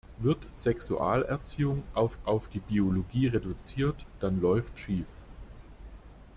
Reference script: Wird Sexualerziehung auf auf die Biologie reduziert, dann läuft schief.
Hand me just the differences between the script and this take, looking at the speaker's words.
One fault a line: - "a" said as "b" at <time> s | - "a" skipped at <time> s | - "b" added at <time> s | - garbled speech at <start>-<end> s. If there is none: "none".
none